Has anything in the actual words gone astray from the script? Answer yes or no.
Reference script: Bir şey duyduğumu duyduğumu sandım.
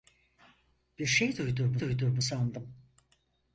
no